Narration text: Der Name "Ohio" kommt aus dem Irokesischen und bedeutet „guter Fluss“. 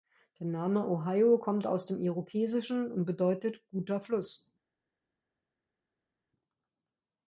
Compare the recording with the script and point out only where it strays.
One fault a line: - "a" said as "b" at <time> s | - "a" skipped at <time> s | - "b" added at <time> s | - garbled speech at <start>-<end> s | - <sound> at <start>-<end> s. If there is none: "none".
none